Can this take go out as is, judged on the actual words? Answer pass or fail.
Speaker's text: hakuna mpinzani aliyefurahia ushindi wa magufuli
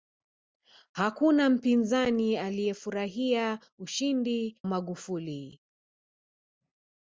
fail